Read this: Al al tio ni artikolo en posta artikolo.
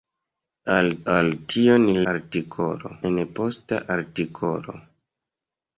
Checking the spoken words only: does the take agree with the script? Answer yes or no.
yes